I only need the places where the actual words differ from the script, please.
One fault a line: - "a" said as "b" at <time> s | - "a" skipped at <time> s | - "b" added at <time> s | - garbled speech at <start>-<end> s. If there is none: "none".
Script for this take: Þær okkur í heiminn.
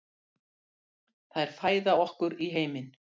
- "fæða" added at 1.6 s